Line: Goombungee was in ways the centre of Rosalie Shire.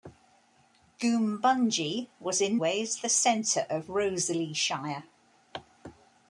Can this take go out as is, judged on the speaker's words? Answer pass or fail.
pass